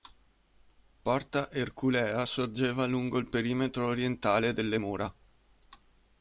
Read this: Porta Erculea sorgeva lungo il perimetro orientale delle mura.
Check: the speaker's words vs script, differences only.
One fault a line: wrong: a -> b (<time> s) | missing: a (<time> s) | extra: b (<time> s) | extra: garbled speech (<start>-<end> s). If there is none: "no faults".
no faults